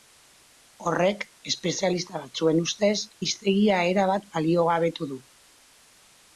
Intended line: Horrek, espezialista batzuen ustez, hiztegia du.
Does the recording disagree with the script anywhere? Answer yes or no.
yes